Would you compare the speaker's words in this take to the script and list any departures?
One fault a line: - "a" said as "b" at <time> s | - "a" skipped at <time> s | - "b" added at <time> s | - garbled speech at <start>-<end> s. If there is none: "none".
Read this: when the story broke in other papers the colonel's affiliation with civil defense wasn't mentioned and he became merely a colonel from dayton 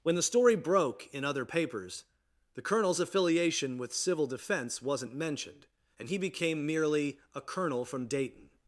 none